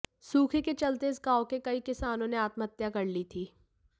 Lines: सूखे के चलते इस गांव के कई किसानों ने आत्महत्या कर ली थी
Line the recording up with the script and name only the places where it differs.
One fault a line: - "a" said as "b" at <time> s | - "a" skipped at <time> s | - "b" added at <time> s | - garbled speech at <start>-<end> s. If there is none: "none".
none